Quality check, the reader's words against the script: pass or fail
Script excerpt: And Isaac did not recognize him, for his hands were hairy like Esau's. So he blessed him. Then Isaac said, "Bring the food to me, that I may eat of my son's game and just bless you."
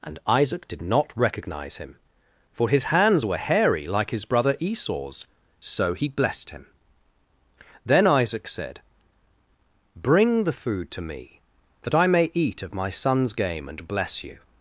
fail